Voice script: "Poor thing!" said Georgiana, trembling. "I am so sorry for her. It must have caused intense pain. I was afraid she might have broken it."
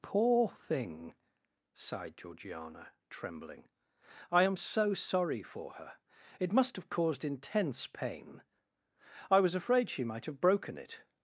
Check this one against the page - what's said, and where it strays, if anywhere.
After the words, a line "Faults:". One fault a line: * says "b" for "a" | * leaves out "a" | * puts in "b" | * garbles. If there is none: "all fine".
"Poor thing!" sighed Georgiana, trembling. "I am so sorry for her. It must have caused intense pain. I was afraid she might have broken it."
Faults:
* says "sighed" for "said"